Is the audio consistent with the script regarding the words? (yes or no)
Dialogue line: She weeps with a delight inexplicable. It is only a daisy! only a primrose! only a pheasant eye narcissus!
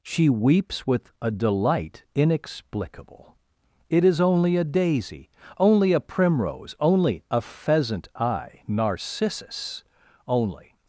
no